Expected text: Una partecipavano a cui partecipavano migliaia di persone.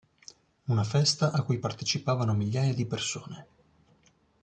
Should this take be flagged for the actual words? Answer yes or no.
yes